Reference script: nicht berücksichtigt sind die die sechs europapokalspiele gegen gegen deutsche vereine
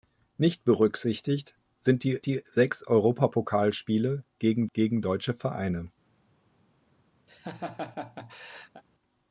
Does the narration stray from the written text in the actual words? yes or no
no